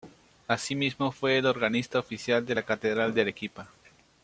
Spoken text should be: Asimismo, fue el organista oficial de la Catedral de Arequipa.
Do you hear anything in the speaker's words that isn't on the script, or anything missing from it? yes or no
no